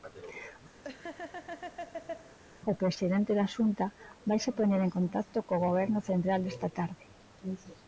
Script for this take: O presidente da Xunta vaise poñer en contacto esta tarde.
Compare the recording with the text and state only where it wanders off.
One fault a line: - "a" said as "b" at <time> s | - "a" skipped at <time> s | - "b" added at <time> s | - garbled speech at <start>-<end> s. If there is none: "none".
- "co Goberno central" added at 5.5 s